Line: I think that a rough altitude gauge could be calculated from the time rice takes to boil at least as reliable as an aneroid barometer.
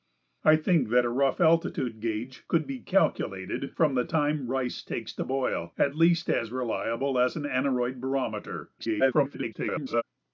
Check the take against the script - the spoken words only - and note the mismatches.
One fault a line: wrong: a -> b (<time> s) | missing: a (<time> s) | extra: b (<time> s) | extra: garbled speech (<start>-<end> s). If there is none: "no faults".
extra: garbled speech (8.8-10.0 s)